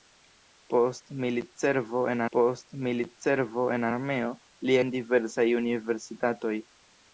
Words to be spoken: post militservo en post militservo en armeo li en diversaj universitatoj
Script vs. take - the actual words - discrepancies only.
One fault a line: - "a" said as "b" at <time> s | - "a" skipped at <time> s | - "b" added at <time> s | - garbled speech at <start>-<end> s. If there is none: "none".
none